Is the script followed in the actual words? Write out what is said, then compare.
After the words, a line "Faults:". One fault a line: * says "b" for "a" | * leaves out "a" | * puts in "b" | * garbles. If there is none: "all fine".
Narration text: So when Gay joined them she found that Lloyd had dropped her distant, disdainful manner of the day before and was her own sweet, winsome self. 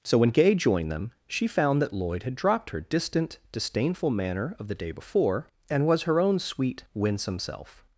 So when Gay joined them she found that Lloyd had dropped her distant, disdainful manner of the day before and was her own sweet, winsome self.
Faults:
all fine